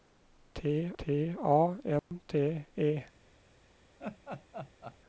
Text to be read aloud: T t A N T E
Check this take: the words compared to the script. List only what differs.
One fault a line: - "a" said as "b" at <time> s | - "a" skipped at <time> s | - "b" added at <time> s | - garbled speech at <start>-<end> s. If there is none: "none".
none